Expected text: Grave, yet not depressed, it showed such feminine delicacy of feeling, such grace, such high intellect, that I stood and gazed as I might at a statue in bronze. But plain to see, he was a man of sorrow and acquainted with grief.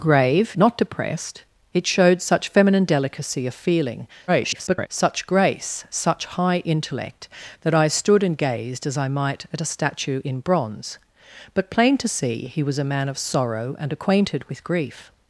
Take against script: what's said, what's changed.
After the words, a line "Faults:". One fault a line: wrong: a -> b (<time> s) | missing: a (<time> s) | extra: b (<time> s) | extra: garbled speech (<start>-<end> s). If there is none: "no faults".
Grave, not depressed, it showed such feminine delicacy of feeling, [garbled] such grace, such high intellect, that I stood and gazed as I might at a statue in bronze. But plain to see, he was a man of sorrow and acquainted with grief.
Faults:
missing: yet (0.6 s)
extra: garbled speech (4.3-4.9 s)